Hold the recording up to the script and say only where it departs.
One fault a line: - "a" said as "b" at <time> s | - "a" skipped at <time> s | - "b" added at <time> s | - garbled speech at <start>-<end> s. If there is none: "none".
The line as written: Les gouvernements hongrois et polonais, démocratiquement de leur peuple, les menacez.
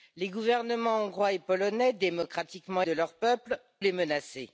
none